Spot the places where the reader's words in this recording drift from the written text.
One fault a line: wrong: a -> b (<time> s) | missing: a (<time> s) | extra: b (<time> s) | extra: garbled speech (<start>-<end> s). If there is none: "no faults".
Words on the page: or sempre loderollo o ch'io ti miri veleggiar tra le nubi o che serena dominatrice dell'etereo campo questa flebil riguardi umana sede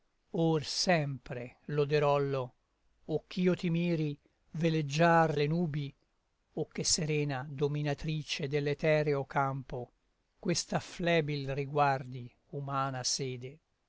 missing: tra (5.4 s)